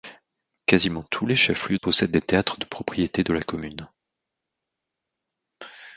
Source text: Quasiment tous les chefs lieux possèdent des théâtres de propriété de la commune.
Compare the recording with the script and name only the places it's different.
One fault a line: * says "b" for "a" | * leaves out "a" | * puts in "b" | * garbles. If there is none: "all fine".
all fine